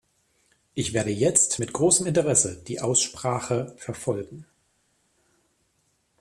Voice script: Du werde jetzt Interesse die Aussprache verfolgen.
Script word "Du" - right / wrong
wrong